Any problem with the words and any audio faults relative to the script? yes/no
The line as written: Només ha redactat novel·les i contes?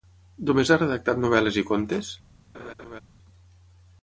yes